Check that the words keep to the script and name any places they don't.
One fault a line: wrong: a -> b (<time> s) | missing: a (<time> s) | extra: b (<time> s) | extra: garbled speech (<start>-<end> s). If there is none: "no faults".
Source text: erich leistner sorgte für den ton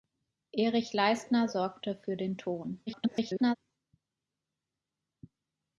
extra: garbled speech (2.9-3.6 s)